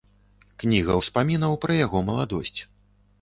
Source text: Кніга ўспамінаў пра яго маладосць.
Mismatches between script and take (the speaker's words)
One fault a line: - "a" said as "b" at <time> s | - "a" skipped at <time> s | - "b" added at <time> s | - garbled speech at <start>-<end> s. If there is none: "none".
none